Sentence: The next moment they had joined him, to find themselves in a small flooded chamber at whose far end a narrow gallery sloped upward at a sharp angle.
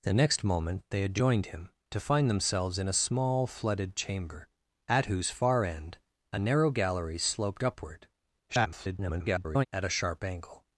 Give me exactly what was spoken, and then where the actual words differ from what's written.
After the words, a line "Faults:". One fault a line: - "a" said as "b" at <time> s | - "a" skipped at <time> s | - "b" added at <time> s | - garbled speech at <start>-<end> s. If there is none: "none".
The next moment they had joined him, to find themselves in a small flooded chamber at whose far end a narrow gallery sloped upward [garbled] at a sharp angle.
Faults:
- garbled speech at 8.5-9.7 s